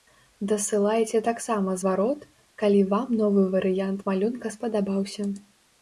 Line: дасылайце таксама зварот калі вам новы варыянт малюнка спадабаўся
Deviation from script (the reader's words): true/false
false